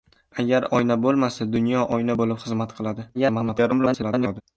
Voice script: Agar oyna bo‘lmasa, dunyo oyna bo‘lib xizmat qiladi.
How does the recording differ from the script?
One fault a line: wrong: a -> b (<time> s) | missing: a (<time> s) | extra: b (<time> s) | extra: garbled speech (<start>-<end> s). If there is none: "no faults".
extra: garbled speech (3.1-4.4 s)